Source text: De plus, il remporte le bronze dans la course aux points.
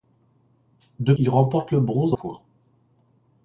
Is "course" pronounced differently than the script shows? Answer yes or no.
yes